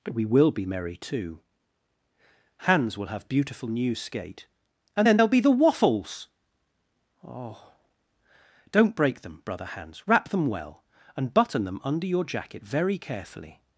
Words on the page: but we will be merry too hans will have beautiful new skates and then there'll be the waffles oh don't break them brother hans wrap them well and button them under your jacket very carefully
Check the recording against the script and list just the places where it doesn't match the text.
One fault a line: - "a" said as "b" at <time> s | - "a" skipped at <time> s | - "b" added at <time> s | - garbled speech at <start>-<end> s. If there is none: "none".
- "skates" said as "skate" at 4.0 s